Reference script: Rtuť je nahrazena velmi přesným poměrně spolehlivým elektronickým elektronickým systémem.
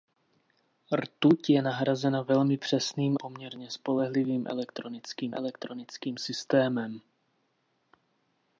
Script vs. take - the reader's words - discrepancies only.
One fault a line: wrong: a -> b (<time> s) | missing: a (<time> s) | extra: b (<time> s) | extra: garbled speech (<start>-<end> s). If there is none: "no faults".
no faults